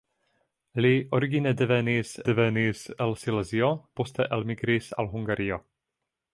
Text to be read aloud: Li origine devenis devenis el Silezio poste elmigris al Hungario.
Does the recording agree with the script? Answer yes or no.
yes